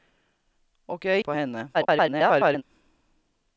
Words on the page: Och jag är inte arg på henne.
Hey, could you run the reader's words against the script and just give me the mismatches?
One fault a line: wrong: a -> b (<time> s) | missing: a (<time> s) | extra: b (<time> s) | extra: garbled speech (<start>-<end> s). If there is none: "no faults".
missing: inte arg (1.2 s)
extra: garbled speech (1.7-2.6 s)